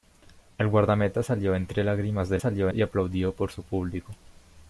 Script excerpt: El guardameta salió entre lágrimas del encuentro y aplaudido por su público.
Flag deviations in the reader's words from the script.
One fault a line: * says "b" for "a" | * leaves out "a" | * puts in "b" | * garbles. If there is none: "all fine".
* says "salió" for "encuentro"